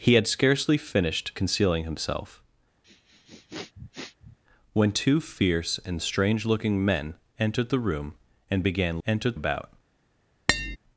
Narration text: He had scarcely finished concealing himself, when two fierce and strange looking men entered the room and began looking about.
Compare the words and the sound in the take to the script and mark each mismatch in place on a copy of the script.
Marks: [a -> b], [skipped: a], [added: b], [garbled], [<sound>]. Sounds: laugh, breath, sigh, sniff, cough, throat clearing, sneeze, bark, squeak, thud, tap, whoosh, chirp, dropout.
He had scarcely finished concealing himself, [sniff] when two fierce and strange looking men entered the room and began [looking -> entered] about. [tap]